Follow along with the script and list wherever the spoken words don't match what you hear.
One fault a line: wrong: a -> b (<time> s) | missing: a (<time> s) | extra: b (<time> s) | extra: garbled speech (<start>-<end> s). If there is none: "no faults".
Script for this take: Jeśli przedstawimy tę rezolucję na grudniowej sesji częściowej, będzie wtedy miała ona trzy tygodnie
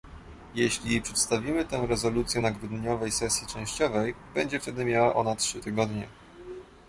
no faults